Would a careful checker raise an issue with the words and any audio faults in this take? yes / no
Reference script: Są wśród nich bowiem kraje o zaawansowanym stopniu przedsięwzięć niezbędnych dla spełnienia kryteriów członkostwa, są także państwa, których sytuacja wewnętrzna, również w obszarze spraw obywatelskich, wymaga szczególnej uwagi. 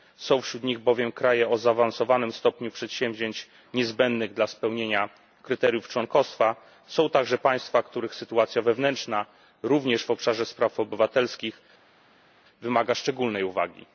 no